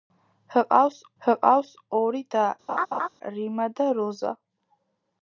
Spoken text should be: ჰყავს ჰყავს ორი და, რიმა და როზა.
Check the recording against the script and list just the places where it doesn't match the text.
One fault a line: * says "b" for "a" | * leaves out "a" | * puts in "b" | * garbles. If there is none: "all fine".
all fine